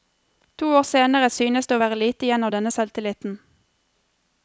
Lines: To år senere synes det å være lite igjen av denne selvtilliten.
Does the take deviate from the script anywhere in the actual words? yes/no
no